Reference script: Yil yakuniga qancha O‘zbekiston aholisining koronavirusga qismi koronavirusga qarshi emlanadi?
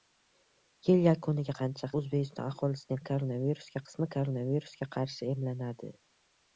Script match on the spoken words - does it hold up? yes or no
yes